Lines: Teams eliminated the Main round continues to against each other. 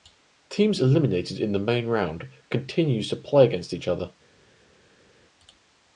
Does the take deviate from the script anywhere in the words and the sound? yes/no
yes